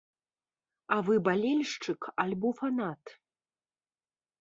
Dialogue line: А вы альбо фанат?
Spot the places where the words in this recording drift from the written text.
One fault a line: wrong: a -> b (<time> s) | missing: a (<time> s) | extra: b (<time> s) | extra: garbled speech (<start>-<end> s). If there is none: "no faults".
extra: балельшчык (1.3 s)